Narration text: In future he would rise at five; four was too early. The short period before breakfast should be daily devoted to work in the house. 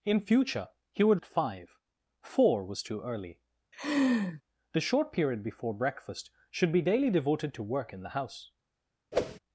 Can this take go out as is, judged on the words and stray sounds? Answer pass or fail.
fail